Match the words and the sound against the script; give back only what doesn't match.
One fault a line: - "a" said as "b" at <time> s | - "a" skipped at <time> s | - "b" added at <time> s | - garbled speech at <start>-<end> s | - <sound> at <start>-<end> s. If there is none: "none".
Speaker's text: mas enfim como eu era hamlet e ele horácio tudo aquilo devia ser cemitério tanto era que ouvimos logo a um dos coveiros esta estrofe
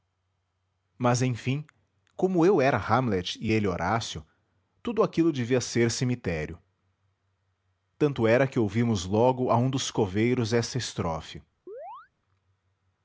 - chirp at 11.7-12.1 s